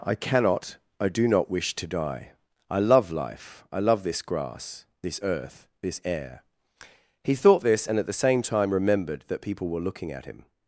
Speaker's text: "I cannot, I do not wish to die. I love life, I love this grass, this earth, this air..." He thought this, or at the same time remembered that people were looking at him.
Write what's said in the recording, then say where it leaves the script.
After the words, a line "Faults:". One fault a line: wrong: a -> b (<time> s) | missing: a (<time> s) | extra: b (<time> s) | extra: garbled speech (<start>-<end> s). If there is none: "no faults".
"I cannot, I do not wish to die. I love life, I love this grass, this earth, this air..." He thought this, and at the same time remembered that people were looking at him.
Faults:
wrong: or -> and (7.8 s)